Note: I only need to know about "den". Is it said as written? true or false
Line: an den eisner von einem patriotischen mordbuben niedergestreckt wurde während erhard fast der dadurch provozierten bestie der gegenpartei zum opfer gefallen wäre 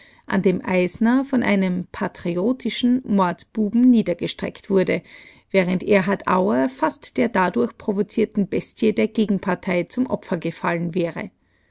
false